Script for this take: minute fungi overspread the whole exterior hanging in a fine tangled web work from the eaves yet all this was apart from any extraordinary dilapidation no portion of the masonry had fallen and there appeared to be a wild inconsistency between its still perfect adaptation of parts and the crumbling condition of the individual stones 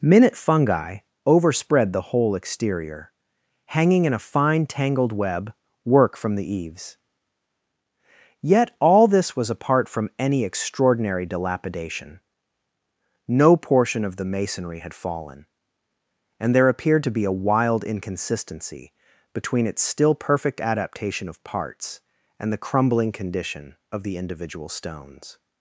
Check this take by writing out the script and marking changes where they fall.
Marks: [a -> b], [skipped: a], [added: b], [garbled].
minute fungi overspread the whole exterior hanging in a fine tangled web work from the eaves yet all this was apart from any extraordinary dilapidation no portion of the masonry had fallen and there appeared to be a wild inconsistency between its still perfect adaptation of parts and the crumbling condition of the individual stones